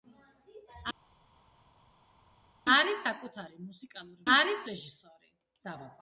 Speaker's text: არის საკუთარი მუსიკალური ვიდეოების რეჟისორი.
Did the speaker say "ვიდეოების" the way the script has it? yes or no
no